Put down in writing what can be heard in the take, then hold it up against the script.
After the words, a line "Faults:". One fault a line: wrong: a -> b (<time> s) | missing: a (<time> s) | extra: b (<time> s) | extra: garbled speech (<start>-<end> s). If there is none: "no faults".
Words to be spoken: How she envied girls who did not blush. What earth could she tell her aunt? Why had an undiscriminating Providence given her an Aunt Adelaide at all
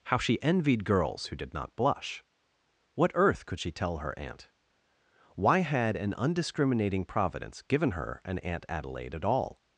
How she envied girls who did not blush. What earth could she tell her aunt? Why had an undiscriminating Providence given her an Aunt Adelaide at all
Faults:
no faults